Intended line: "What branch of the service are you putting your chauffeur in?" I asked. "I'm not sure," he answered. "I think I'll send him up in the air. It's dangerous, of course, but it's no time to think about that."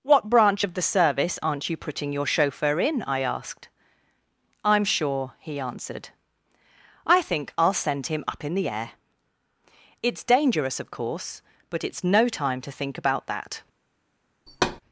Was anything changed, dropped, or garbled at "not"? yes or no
yes